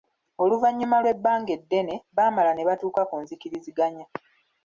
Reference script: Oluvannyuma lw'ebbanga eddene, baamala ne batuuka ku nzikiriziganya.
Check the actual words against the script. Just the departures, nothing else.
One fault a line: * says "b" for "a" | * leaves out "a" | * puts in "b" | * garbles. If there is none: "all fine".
all fine